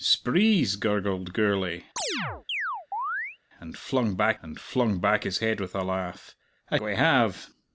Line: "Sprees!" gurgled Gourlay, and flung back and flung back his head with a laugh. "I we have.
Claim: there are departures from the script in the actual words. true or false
false